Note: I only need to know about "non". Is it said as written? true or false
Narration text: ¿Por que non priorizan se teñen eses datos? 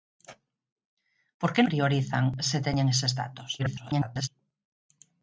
false